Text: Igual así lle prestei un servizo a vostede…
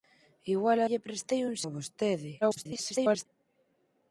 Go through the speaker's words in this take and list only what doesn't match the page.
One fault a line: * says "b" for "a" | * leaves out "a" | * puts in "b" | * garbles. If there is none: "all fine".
* leaves out "así"
* leaves out "servizo"
* garbles